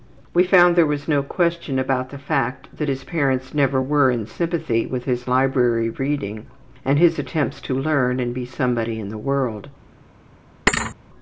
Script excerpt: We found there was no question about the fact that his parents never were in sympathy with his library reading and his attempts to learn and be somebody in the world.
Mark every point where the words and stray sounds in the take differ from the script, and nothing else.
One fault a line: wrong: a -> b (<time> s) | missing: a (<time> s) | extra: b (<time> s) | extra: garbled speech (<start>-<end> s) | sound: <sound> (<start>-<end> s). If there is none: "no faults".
sound: thud (10.7-11.0 s)